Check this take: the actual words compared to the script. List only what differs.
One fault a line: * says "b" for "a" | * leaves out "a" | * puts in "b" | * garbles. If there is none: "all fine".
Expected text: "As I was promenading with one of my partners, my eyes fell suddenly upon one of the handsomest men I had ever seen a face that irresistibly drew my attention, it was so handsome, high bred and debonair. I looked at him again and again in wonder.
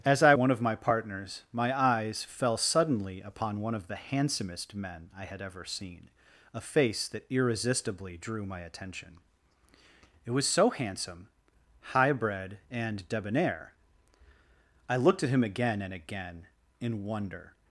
* leaves out "was promenading with"